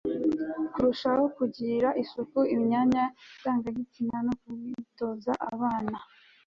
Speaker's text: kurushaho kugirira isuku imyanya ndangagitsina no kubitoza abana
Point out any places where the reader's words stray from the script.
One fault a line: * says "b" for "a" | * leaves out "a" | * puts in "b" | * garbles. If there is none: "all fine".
all fine